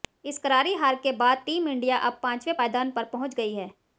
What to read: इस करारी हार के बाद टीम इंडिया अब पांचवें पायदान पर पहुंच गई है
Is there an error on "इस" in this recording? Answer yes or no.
no